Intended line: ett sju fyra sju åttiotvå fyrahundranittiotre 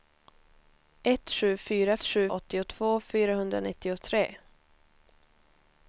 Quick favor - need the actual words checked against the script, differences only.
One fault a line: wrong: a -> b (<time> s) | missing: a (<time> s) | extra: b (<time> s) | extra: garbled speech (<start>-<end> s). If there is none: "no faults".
no faults